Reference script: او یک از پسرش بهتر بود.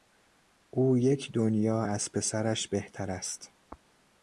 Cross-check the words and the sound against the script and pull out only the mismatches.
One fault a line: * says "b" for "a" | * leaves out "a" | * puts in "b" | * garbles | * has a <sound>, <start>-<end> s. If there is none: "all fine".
* puts in "دنیا"
* says "است" for "بود"